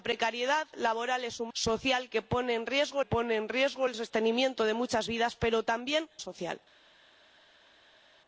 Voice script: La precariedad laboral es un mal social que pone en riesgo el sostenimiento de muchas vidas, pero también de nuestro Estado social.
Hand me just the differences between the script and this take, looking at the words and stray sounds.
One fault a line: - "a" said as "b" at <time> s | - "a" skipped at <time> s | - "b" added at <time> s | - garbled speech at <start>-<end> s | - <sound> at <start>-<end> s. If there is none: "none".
- "mal" skipped at 1.5 s
- "pone en riesgo" added at 3.0 s
- "de nuestro Estado" skipped at 6.1 s